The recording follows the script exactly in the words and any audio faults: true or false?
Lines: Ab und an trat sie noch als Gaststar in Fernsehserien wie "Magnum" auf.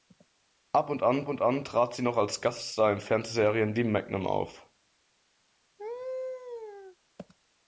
false